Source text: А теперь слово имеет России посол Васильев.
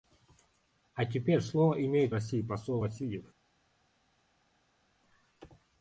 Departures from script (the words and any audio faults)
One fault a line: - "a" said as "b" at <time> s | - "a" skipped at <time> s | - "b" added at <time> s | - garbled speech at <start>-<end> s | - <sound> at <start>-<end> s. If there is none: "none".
none